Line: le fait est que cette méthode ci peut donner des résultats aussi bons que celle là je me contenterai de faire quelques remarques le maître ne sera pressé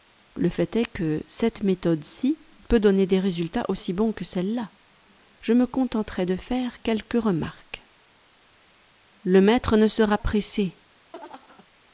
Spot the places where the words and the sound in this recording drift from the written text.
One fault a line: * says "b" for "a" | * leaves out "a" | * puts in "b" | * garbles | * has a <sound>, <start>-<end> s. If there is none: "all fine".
* has a laugh, 11.1-11.7 s